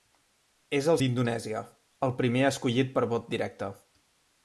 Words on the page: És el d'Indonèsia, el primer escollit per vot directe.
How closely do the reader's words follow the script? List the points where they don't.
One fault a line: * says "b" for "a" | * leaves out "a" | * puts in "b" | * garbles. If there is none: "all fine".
all fine